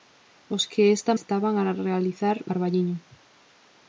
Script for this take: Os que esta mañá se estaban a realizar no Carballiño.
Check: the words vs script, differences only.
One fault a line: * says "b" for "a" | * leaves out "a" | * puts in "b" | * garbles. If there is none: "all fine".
* leaves out "mañá se"
* leaves out "no"